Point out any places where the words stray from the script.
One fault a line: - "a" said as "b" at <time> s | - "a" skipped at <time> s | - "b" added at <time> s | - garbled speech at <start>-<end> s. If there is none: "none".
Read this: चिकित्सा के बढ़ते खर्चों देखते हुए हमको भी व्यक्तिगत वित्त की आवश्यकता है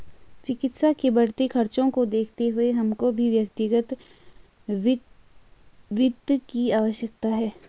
- "को" added at 1.9 s